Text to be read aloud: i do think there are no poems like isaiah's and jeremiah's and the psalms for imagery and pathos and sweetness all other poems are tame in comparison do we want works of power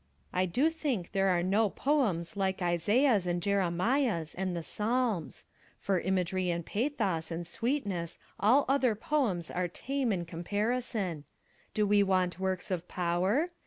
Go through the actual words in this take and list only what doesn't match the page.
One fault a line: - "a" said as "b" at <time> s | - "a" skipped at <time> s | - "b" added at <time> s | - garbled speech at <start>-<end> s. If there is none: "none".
none